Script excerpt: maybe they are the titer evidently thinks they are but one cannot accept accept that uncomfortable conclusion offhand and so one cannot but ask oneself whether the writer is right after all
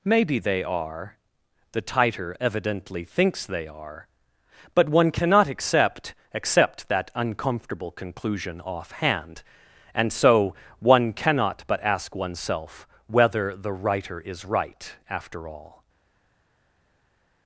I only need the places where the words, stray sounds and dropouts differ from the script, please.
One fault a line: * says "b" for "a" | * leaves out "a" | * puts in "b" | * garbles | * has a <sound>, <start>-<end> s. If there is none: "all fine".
all fine